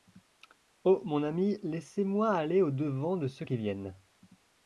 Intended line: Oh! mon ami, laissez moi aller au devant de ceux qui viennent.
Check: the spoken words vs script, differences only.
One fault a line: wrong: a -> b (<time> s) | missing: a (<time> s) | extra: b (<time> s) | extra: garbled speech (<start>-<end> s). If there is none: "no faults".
no faults